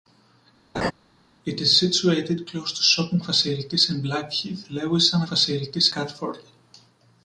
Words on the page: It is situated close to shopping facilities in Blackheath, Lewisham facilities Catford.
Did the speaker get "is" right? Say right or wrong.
right